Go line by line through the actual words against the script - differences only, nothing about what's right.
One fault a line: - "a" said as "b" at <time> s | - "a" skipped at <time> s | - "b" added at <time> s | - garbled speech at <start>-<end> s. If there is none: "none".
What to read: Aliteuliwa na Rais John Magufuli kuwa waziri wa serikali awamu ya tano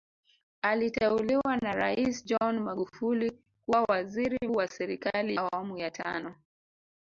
none